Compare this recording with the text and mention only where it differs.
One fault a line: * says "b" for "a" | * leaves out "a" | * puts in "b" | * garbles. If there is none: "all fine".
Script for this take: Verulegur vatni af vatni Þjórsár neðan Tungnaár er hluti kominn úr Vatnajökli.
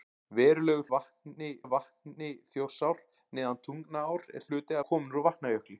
all fine